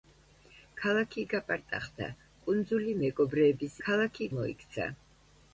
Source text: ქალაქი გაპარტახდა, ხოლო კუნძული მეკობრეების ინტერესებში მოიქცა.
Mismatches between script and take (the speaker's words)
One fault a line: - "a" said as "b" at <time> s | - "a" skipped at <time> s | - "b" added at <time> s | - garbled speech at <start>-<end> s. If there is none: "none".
- "ხოლო" skipped at 2.1 s
- "ინტერესებში" said as "ქალაქი" at 3.8 s